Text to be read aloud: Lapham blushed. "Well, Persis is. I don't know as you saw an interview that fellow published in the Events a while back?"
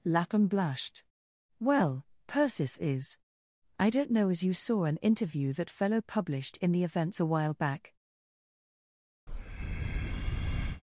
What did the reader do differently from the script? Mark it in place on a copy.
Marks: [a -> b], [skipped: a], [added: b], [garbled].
Lapham blushed. "Well, Persis is. I don't know as you saw an interview that fellow published in the Events a while back?"